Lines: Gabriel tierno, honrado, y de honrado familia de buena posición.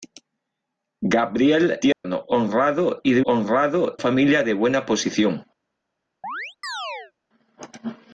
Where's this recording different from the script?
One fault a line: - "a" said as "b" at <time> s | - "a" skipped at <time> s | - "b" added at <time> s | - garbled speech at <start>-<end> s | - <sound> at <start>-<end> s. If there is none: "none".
- dropout at 1.9-2.0 s
- chirp at 6.2-7.1 s